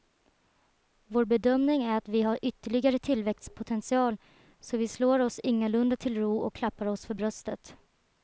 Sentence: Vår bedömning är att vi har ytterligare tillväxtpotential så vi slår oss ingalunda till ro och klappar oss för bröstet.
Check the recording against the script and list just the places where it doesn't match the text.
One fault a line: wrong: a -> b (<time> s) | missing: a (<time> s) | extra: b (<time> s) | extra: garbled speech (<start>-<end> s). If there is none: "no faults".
no faults